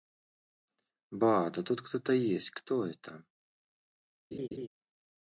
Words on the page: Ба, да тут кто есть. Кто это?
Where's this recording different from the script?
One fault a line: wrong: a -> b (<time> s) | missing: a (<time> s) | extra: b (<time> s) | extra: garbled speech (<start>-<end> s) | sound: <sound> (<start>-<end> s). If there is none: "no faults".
extra: то (2.0 s)
sound: laugh (4.3-4.7 s)